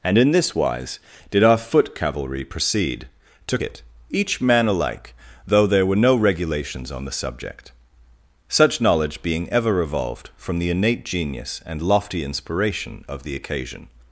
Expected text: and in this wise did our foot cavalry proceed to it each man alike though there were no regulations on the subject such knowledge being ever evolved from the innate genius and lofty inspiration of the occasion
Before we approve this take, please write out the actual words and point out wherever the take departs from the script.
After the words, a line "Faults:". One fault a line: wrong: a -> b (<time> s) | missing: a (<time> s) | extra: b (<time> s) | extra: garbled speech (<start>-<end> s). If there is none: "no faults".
and in this wise did our foot cavalry proceed to it each man alike though there were no regulations on the subject such knowledge being ever evolved from the innate genius and lofty inspiration of the occasion
Faults:
no faults